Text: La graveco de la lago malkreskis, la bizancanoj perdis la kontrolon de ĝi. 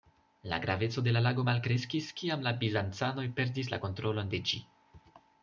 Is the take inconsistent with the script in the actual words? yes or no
yes